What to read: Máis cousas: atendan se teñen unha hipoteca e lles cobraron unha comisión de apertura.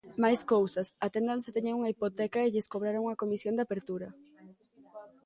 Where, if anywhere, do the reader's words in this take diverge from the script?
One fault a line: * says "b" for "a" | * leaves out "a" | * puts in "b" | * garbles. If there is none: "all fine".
all fine